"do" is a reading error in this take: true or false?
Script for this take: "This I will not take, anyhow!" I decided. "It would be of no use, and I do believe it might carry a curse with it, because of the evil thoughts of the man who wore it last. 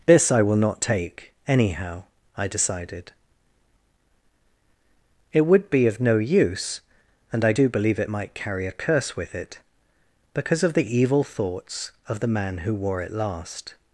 false